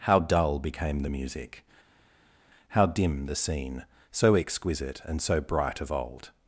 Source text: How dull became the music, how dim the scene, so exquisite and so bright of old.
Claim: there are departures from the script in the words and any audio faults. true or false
false